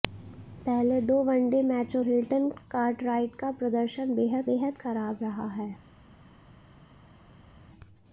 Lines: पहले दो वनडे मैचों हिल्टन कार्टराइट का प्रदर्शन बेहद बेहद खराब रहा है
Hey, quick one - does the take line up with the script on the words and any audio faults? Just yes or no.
yes